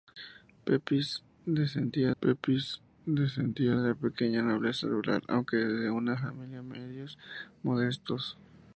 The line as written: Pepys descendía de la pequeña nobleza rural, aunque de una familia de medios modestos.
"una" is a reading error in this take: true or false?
false